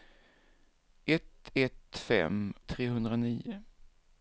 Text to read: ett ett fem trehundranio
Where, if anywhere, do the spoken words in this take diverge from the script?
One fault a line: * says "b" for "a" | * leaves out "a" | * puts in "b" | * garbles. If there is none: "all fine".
all fine